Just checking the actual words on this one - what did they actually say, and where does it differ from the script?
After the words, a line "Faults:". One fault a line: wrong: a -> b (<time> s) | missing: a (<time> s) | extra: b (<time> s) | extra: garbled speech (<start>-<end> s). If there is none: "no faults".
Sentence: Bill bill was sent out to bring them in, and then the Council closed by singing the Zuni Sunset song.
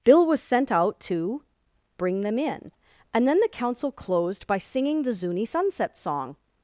Bill was sent out to bring them in, and then the Council closed by singing the Zuni Sunset song.
Faults:
missing: bill (0.2 s)